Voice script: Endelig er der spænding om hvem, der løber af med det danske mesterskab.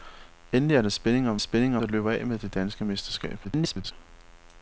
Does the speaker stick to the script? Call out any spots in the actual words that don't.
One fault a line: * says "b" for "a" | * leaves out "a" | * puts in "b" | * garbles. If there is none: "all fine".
* says "spænding" for "hvem"
* garbles